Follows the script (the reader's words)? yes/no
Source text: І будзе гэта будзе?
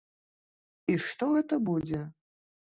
no